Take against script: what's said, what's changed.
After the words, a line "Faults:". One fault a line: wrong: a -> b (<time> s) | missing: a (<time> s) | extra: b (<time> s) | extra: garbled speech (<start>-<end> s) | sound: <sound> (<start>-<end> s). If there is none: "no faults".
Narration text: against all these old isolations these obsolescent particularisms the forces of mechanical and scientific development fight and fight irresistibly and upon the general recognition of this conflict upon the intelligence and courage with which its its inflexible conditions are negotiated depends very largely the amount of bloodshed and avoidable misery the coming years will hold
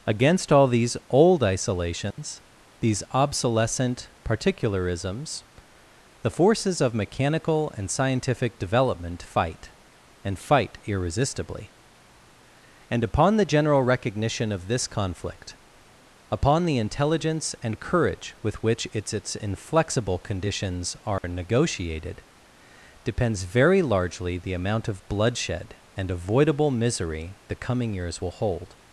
against all these old isolations these obsolescent particularisms the forces of mechanical and scientific development fight and fight irresistibly and upon the general recognition of this conflict upon the intelligence and courage with which its its inflexible conditions are negotiated depends very largely the amount of bloodshed and avoidable misery the coming years will hold
Faults:
sound: dropout (2.1-2.2 s)
sound: dropout (21.2-21.2 s)